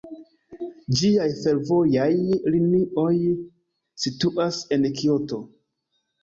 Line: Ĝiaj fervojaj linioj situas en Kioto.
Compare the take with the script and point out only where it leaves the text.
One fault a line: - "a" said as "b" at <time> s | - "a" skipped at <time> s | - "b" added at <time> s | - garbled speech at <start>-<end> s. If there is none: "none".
none